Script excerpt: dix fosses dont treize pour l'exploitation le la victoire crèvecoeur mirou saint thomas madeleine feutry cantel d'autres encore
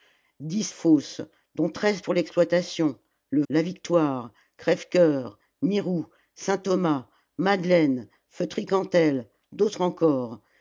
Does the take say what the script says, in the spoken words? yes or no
yes